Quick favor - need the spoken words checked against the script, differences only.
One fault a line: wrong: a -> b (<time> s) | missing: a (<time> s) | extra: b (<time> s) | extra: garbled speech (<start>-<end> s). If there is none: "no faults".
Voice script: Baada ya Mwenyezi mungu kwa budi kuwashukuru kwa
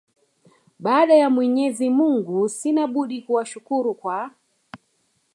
wrong: kwa -> sina (2.5 s)